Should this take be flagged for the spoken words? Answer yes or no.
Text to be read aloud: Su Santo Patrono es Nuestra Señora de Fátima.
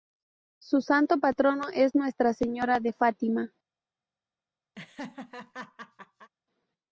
no